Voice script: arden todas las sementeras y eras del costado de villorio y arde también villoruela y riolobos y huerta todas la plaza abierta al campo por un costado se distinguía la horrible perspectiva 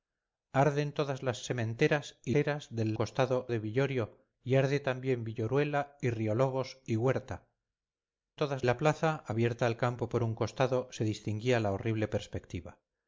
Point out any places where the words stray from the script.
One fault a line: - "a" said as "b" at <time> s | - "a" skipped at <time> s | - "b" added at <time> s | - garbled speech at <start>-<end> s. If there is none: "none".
none